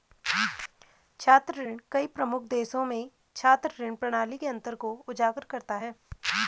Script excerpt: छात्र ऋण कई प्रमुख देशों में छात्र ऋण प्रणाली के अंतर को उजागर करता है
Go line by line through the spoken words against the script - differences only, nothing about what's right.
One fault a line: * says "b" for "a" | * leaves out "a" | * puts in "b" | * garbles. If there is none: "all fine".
all fine